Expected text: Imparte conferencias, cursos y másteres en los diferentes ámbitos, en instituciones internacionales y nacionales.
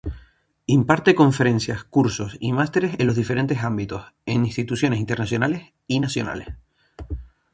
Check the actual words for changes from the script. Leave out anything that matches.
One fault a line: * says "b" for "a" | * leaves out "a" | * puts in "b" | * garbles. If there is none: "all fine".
all fine